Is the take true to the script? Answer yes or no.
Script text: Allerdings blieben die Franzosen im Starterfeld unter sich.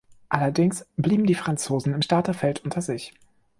yes